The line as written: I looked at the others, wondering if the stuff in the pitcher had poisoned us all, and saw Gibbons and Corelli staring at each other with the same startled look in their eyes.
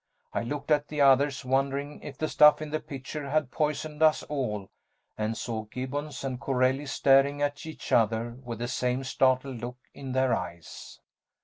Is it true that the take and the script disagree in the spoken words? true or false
false